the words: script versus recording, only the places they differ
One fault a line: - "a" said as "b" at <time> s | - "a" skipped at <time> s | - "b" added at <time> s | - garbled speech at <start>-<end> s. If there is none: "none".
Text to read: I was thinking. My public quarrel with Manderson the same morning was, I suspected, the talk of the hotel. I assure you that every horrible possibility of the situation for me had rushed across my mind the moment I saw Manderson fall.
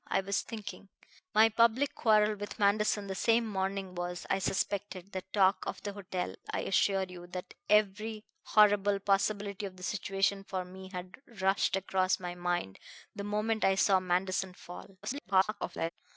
- garbled speech at 15.0-15.9 s